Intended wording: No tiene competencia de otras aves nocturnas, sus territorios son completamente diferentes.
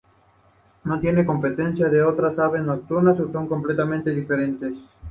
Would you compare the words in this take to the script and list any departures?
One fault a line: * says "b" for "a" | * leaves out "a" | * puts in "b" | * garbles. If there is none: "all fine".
* leaves out "territorios"